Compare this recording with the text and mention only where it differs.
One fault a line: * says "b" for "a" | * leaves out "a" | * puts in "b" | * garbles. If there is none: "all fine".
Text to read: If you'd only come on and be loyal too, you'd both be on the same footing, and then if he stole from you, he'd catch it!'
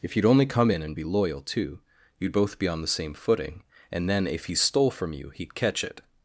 * says "in" for "on"